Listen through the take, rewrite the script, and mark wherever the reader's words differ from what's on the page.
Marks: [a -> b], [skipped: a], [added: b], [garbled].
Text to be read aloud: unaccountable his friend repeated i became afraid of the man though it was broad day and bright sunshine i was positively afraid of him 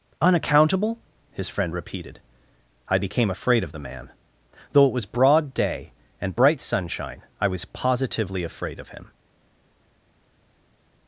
unaccountable his friend repeated i became afraid of the man though it was broad day and bright sunshine i was positively afraid of him